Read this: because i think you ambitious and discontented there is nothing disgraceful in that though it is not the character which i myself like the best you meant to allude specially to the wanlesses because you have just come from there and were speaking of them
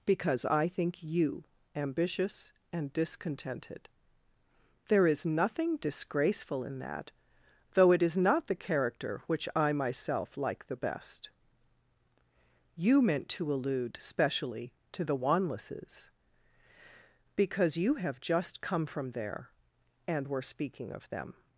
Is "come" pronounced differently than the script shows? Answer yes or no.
no